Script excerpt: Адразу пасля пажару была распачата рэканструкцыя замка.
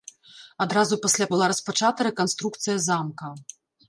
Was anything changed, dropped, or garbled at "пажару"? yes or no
yes